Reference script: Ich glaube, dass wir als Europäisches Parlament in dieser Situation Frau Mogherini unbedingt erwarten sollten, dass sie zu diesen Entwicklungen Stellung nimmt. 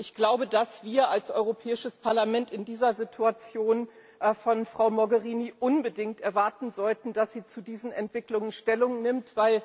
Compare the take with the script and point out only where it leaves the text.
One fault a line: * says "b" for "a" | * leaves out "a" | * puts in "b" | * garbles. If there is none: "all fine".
* puts in "von"